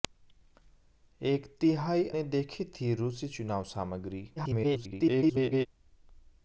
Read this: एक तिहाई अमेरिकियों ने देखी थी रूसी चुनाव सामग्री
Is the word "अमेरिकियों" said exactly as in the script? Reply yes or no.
no